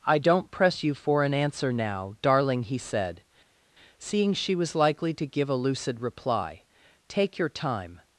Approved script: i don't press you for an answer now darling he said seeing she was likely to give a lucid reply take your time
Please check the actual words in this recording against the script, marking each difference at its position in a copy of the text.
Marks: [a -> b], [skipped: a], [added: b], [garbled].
i don't press you for an answer now darling he said seeing she was likely to give a lucid reply take your time